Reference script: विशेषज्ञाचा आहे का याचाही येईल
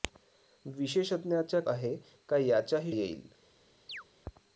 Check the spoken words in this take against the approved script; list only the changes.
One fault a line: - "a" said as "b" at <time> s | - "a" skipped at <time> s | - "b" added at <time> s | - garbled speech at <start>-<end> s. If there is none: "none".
none